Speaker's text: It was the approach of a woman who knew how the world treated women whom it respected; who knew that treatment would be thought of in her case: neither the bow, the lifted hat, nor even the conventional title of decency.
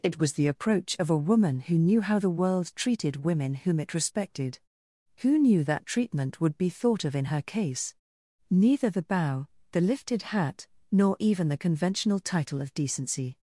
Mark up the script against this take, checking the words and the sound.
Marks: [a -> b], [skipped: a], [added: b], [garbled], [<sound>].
It was the approach of a woman who knew how the world treated women whom it respected; who knew that treatment would be thought of in her case: neither the bow, the lifted hat, nor even the conventional title of decency.